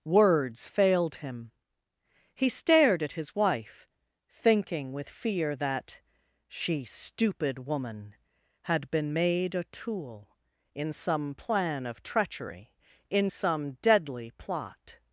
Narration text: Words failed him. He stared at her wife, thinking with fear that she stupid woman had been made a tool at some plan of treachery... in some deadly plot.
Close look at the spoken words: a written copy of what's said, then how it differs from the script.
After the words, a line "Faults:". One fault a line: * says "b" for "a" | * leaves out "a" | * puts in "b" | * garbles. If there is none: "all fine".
Words failed him. He stared at his wife, thinking with fear that she stupid woman had been made a tool in some plan of treachery... in some deadly plot.
Faults:
* says "his" for "her"
* says "in" for "at"